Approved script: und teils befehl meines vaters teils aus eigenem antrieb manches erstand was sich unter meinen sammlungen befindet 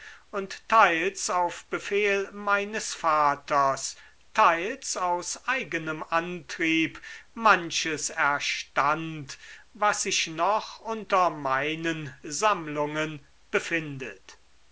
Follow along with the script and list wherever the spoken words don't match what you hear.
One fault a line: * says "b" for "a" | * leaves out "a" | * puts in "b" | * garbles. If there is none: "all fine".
* puts in "auf"
* puts in "noch"